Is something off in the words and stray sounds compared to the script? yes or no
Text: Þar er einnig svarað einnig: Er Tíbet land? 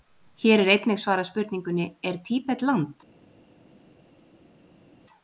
yes